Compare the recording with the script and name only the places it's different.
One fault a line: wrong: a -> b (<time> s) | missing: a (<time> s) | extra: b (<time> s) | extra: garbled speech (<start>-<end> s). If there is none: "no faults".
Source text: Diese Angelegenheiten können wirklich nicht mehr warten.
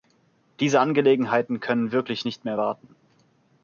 no faults